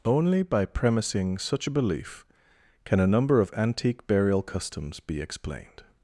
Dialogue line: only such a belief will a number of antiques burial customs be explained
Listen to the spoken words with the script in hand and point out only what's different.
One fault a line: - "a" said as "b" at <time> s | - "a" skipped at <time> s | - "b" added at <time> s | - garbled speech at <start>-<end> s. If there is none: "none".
- "by premising" added at 0.4 s
- "will" said as "can" at 2.9 s
- "antiques" said as "antique" at 3.5 s